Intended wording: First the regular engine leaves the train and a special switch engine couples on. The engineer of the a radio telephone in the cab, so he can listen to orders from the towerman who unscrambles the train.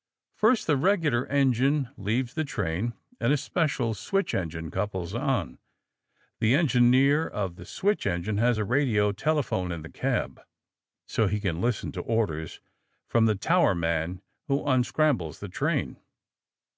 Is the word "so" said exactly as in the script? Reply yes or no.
yes